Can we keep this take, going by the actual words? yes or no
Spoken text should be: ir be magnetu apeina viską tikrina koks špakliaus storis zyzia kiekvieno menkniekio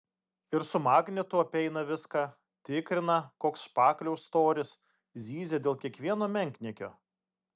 no